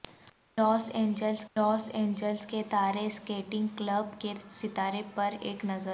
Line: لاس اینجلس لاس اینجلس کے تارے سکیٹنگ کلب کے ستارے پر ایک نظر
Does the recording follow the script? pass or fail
pass